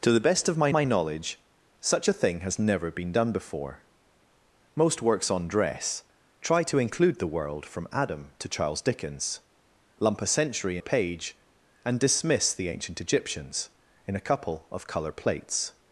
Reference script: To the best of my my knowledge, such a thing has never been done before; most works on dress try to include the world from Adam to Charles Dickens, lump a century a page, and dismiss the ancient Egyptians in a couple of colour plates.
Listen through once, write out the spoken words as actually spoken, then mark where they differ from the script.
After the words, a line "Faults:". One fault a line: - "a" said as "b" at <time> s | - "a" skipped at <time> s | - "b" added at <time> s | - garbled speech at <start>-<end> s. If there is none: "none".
To the best of my my knowledge, such a thing has never been done before; most works on dress try to include the world from Adam to Charles Dickens, lump a century a page, and dismiss the ancient Egyptians in a couple of colour plates.
Faults:
none